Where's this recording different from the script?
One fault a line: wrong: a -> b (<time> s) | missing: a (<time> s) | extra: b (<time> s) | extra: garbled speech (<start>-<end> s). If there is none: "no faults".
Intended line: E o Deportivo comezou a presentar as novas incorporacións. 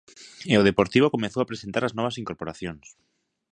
no faults